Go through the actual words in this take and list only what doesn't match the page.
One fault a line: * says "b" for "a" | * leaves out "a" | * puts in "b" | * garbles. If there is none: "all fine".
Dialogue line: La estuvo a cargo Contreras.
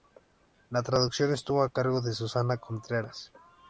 * puts in "traducción"
* puts in "de Susana"